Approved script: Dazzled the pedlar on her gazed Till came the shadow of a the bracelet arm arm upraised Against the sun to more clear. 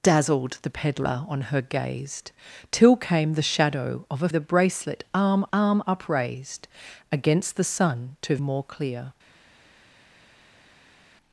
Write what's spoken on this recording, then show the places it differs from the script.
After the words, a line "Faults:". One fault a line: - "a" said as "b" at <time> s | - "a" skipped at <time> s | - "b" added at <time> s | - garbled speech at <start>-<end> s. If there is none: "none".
Dazzled the pedlar on her gazed Till came the shadow of a the bracelet arm arm upraised Against the sun to more clear.
Faults:
none